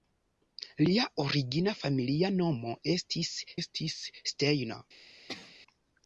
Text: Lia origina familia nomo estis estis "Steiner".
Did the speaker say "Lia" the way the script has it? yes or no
yes